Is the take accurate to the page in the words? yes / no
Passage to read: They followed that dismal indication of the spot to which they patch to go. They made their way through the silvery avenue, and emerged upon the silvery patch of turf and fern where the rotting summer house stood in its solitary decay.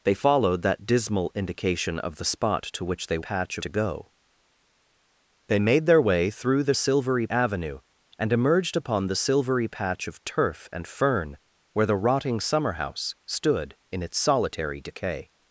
yes